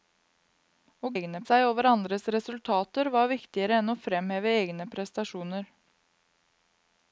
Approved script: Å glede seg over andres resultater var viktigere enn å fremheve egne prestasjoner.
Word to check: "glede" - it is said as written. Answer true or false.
false